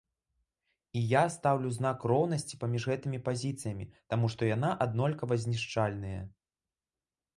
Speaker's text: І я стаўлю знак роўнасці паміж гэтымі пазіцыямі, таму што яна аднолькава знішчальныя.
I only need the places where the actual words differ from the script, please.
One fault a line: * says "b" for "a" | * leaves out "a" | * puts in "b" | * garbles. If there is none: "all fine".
all fine